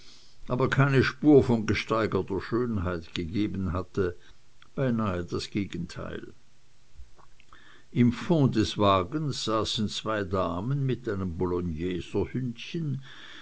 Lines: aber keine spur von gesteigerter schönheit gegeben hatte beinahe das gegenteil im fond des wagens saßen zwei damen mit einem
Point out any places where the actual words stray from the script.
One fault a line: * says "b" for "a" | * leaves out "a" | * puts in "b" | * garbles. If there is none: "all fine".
all fine